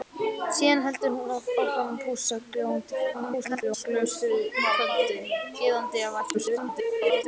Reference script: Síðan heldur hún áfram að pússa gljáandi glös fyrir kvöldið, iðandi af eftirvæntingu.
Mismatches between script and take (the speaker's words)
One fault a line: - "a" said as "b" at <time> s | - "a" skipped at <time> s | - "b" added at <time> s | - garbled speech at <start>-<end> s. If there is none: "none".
- garbled speech at 3.1-3.8 s
- garbled speech at 6.3-7.2 s